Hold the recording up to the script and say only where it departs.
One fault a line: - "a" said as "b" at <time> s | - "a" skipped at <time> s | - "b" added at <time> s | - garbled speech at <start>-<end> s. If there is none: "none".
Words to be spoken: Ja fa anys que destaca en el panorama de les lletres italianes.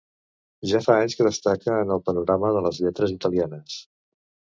none